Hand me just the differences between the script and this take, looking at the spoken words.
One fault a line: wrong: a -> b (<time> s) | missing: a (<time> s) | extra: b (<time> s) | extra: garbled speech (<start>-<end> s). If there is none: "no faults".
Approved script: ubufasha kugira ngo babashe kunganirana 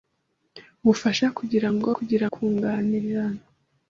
wrong: babashe -> kugira (2.0 s)